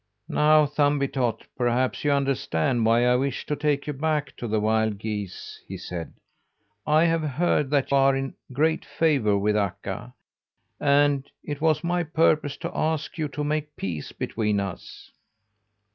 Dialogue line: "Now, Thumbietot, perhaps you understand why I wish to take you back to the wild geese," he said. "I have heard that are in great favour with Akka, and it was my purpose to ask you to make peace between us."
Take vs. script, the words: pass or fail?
pass